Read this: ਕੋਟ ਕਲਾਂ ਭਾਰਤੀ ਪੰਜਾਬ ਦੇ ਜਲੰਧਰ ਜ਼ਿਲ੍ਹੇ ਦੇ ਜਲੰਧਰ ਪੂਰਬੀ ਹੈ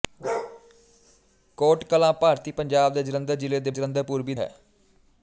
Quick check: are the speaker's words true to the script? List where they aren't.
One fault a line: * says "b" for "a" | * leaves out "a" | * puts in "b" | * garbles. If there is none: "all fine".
all fine